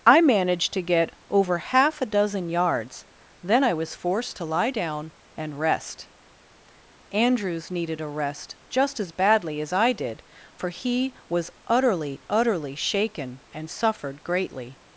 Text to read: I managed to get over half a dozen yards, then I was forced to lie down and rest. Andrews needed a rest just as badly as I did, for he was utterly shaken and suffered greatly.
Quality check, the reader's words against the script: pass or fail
fail